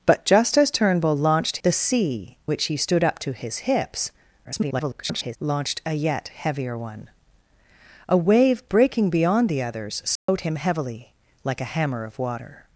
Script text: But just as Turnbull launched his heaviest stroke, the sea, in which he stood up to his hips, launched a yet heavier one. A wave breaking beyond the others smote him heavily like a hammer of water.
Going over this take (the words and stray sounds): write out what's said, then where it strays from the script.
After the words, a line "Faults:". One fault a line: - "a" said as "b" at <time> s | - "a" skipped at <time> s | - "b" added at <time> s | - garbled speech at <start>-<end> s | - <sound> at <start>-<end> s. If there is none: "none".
But just as Turnbull launched the sea, which he stood up to his hips, [garbled] launched a yet heavier one. A wave breaking beyond the others smote him heavily like a hammer of water.
Faults:
- "his heaviest stroke" skipped at 1.6 s
- "in" skipped at 2.4 s
- garbled speech at 4.4-5.4 s
- dropout at 10.2-10.3 s